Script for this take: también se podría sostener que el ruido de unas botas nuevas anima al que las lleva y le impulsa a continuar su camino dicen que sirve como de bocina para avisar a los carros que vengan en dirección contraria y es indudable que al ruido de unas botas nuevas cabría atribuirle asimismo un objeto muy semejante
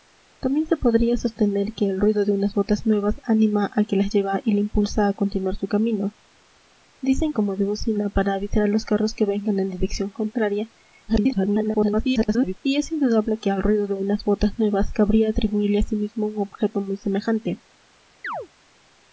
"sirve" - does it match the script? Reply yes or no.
no